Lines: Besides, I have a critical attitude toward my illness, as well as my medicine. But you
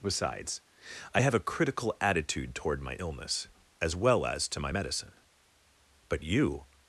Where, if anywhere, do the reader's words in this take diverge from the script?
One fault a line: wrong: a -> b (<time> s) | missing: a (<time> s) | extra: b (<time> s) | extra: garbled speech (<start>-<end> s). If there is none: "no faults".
extra: to (4.5 s)